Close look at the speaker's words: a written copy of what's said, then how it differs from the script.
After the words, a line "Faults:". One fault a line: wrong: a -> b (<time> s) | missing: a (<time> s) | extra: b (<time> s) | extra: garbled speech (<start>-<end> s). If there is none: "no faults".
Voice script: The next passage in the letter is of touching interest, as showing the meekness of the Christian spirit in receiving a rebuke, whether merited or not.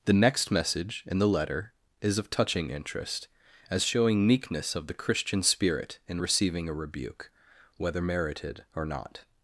The next message in the letter is of touching interest, as showing meekness of the Christian spirit in receiving a rebuke, whether merited or not.
Faults:
wrong: passage -> message (0.5 s)
missing: the (4.2 s)